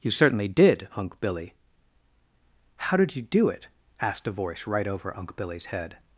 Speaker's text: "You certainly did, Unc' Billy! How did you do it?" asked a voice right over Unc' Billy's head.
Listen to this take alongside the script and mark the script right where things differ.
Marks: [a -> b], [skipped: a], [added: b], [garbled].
"You certainly did, Unc' Billy! How did you do it?" asked a voice right over Unc' Billy's head.